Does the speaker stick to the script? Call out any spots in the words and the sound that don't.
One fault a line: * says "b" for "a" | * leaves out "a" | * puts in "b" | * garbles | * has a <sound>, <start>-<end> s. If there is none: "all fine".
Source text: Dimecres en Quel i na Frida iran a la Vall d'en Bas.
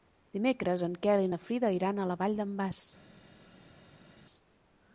all fine